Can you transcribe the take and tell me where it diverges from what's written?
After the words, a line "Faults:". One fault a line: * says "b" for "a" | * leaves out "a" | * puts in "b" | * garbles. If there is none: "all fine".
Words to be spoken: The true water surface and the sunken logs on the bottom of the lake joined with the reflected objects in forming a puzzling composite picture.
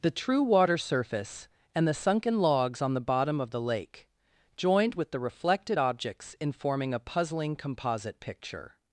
The true water surface and the sunken logs on the bottom of the lake joined with the reflected objects in forming a puzzling composite picture.
Faults:
all fine